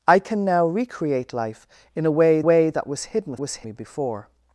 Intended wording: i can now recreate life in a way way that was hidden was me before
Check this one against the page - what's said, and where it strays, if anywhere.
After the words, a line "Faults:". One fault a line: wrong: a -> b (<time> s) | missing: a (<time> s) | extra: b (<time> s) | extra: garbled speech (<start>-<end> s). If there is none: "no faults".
i can now recreate life in a way way that was hidden was me before
Faults:
no faults